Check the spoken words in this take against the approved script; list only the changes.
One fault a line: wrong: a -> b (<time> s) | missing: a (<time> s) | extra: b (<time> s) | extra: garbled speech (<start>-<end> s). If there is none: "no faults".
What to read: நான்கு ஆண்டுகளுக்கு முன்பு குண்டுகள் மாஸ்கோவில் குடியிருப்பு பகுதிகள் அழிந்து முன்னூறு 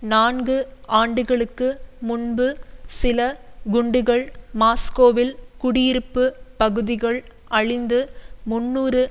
extra: சில (2.9 s)